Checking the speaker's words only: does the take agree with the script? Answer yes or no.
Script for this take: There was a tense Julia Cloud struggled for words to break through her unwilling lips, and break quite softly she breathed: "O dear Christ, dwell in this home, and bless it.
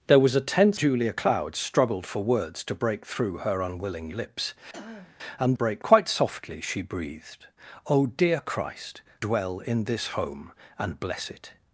yes